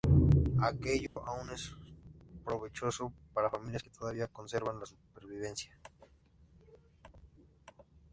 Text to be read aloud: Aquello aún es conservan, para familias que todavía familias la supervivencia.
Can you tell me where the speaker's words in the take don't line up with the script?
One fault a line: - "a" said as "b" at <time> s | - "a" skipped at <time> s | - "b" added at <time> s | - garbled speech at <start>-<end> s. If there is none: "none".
- "conservan" said as "provechoso" at 2.4 s
- "familias" said as "conservan" at 4.2 s